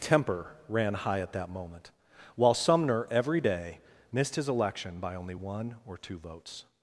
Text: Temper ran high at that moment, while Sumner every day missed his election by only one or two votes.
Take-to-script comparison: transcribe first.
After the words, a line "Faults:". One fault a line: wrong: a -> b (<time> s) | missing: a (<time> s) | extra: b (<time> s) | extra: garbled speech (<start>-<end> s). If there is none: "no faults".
Temper ran high at that moment, while Sumner every day missed his election by only one or two votes.
Faults:
no faults